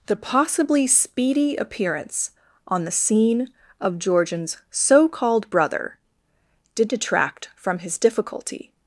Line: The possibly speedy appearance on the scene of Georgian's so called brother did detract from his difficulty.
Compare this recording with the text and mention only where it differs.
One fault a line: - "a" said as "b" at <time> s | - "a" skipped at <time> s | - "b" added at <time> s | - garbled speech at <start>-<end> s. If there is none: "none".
none